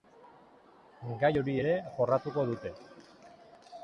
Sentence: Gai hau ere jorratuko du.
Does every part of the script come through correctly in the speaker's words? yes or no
no